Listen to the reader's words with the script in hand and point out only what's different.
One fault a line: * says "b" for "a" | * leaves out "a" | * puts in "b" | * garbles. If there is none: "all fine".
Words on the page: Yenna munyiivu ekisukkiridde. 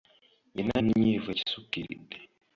all fine